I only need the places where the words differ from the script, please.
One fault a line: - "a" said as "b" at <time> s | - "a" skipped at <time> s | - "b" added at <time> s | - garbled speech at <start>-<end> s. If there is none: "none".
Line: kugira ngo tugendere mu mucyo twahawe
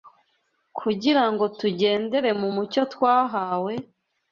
none